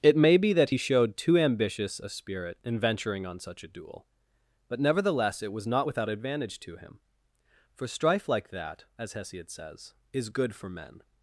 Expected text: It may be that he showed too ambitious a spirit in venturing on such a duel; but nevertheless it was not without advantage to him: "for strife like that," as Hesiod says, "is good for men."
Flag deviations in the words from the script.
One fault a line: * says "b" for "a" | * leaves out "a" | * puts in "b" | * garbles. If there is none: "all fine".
all fine